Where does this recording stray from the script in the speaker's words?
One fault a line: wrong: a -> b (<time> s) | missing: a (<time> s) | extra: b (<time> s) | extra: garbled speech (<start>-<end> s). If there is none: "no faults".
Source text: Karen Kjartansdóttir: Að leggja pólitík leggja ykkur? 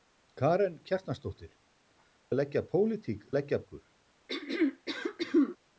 no faults